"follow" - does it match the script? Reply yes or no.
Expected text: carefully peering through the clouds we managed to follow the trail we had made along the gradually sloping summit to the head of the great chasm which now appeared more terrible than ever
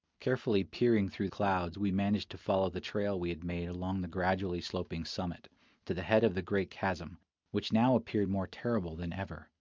yes